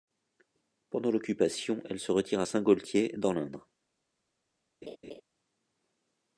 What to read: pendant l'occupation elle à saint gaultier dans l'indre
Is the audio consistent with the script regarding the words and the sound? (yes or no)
no